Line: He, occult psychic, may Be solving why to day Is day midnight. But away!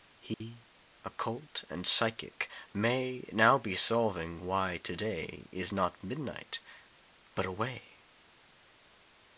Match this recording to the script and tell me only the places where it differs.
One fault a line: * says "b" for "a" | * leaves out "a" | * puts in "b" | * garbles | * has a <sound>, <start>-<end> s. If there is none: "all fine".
* has a dropout, 0.3-0.4 s
* puts in "and"
* puts in "Now"
* says "not" for "day"